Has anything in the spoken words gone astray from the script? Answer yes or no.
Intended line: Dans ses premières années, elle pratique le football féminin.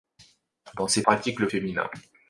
yes